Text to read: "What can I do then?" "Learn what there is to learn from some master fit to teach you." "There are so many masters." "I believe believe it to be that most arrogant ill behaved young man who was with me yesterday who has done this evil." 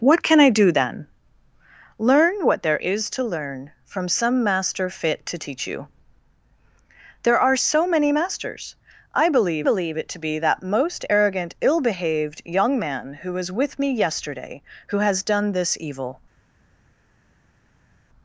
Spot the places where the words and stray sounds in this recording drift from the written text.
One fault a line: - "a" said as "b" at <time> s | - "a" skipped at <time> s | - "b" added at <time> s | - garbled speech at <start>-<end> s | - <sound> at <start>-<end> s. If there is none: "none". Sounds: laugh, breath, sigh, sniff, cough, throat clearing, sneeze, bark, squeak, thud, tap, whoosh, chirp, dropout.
none